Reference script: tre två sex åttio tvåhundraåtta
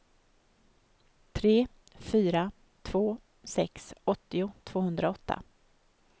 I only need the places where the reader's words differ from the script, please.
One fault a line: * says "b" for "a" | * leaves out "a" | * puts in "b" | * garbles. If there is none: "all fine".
* puts in "fyra"